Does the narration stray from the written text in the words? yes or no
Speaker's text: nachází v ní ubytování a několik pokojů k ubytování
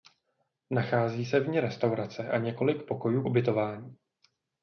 yes